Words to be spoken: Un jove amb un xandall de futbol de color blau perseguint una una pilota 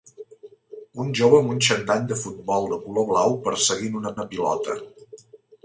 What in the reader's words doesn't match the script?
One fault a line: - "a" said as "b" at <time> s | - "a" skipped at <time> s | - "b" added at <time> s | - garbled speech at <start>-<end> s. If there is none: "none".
none